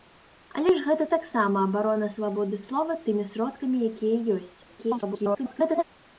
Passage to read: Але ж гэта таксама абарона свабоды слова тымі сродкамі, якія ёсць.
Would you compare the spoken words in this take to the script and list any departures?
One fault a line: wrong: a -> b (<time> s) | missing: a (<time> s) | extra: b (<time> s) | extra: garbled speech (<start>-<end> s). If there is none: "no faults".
extra: garbled speech (4.7-5.8 s)